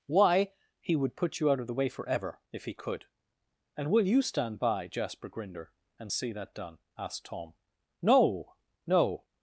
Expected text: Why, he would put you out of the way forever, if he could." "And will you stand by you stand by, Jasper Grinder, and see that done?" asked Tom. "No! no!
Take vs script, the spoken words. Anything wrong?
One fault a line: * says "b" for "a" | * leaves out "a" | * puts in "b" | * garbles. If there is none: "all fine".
* leaves out "you stand by"